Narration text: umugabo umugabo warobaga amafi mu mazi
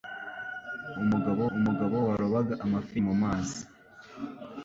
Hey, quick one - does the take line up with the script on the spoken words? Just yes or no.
yes